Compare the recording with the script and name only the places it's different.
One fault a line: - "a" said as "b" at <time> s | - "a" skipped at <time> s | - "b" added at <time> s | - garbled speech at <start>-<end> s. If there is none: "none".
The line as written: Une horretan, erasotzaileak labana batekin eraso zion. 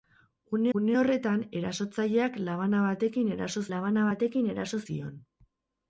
- "une" added at 0.8 s
- "labana batekin eraso" added at 3.7 s